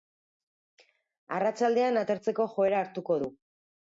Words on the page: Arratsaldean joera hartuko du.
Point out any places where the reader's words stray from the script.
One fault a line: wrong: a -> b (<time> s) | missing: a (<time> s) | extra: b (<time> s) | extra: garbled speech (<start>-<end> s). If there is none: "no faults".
extra: atertzeko (2.0 s)